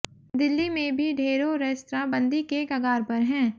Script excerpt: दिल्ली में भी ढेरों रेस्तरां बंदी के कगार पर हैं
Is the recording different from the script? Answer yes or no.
no